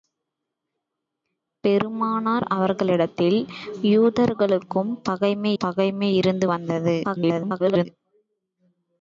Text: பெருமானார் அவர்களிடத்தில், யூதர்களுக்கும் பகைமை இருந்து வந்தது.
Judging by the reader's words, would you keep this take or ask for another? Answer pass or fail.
fail